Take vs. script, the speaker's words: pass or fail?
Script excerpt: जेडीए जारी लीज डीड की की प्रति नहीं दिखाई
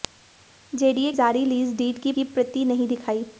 pass